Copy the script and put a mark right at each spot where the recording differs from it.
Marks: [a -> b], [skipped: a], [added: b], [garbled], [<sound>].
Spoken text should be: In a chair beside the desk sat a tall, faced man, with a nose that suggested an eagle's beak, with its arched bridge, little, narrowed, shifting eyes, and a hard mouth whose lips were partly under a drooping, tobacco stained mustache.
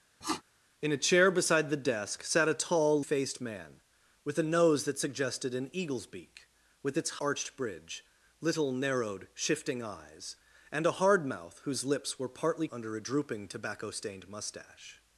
[sniff] In a chair beside the desk sat a tall, faced man, with a nose that suggested an eagle's beak, with its arched bridge, little, narrowed, shifting eyes, and a hard mouth whose lips were partly under a drooping, tobacco stained mustache.